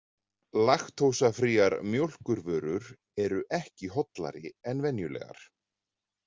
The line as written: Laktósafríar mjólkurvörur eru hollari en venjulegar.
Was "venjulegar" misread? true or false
false